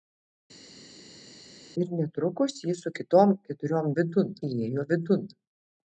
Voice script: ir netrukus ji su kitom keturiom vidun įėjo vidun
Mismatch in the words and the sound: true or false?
false